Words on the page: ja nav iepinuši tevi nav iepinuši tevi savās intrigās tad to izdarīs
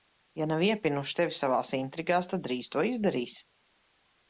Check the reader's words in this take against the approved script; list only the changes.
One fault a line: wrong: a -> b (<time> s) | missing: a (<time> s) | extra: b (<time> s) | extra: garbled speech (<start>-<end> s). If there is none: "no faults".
missing: nav iepinuši tevi (1.3 s)
extra: drīz (2.5 s)